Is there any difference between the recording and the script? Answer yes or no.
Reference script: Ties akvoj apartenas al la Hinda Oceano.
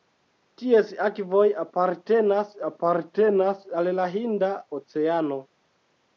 yes